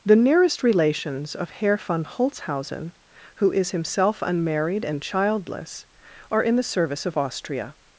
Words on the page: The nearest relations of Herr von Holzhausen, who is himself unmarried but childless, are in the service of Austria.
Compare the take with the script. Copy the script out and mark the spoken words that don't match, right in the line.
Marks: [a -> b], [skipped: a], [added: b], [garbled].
The nearest relations of Herr von Holzhausen, who is himself unmarried [but -> and] childless, are in the service of Austria.